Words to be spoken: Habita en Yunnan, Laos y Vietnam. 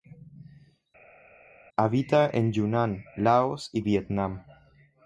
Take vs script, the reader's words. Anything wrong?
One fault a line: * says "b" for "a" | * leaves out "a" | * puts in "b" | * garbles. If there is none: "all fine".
all fine